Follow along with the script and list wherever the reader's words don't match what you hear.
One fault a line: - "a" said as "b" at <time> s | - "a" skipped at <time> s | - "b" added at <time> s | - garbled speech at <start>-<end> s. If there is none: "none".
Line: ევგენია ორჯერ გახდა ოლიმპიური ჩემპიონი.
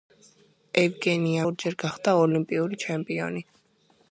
none